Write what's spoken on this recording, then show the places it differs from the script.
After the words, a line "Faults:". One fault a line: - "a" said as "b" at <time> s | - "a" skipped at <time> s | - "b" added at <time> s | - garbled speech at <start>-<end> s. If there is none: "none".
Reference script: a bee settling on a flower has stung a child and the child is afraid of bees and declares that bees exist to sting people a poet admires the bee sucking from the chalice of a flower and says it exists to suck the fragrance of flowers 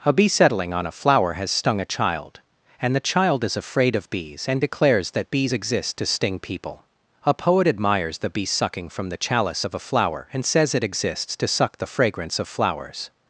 a bee settling on a flower has stung a child and the child is afraid of bees and declares that bees exist to sting people a poet admires the bee sucking from the chalice of a flower and says it exists to suck the fragrance of flowers
Faults:
none